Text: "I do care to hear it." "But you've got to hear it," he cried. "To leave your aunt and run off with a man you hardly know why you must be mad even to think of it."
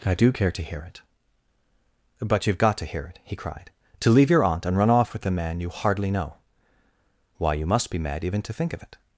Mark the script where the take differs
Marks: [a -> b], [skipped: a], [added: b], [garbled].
"I do care to hear it." "But you've got to hear it," he cried. "To leave your aunt and run off with a man you hardly know why you must be mad even to think of it."